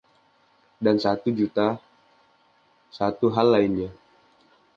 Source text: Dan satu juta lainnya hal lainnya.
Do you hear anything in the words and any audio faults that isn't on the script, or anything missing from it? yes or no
yes